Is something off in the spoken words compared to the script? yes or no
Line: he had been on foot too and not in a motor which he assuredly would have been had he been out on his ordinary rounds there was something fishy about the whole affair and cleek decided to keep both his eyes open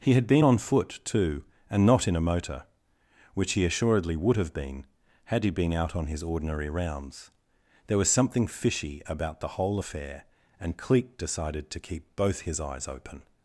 no